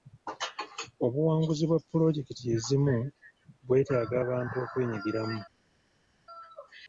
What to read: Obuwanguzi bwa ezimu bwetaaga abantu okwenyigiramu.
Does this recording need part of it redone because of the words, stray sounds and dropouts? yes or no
yes